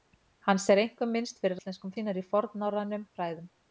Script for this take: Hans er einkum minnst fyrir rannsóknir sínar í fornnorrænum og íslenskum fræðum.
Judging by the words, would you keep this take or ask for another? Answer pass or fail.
fail